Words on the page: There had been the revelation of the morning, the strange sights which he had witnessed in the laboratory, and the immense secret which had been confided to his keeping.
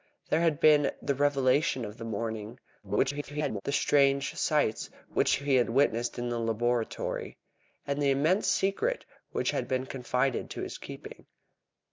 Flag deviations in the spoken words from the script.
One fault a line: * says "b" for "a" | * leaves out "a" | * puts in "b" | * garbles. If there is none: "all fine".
* garbles